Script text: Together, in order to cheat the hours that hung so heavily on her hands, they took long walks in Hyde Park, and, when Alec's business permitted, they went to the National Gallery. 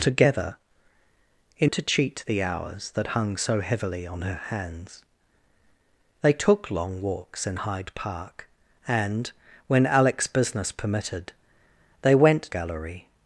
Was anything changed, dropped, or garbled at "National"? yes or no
yes